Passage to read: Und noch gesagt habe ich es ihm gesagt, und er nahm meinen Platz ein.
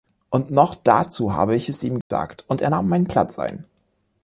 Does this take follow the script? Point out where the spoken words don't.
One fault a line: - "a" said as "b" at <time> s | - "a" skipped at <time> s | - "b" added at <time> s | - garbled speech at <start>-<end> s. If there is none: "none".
- "gesagt" said as "dazu" at 0.7 s